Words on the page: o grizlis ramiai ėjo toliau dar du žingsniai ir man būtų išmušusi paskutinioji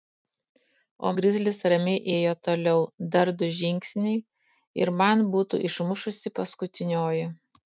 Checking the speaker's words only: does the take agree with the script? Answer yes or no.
yes